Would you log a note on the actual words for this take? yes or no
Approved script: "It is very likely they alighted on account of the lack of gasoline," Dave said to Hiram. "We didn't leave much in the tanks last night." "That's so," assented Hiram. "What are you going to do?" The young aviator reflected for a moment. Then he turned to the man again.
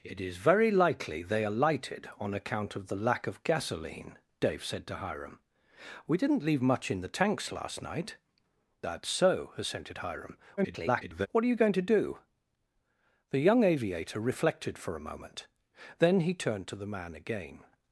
yes